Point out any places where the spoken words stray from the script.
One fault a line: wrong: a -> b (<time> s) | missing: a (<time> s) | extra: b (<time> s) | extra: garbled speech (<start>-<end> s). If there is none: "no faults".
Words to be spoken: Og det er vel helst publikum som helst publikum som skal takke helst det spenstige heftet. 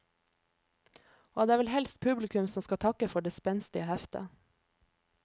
missing: helst publikum som (2.6 s)
wrong: helst -> for (3.1 s)